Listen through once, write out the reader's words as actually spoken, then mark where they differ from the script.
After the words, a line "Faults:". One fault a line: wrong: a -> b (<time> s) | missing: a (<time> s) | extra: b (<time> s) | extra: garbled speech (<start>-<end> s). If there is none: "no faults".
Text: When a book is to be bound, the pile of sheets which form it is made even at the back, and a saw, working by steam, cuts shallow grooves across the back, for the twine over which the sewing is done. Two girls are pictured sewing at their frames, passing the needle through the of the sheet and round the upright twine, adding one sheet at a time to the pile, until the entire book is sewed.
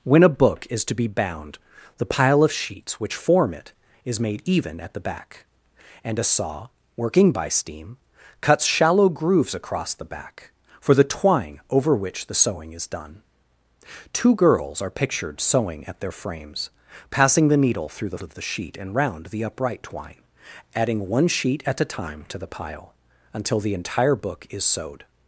When a book is to be bound, the pile of sheets which form it is made even at the back, and a saw, working by steam, cuts shallow grooves across the back, for the twine over which the sewing is done. Two girls are pictured sewing at their frames, passing the needle through the of the sheet and round the upright twine, adding one sheet at a time to the pile, until the entire book is sewed.
Faults:
no faults